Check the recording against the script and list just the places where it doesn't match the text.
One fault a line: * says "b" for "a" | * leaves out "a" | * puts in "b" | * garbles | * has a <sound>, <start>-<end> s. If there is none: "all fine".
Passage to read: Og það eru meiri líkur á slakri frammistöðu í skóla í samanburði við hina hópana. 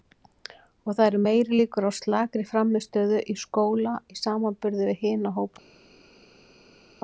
all fine